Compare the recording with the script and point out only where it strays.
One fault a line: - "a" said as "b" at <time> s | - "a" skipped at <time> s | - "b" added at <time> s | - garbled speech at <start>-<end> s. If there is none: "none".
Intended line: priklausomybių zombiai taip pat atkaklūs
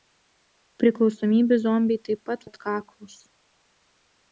none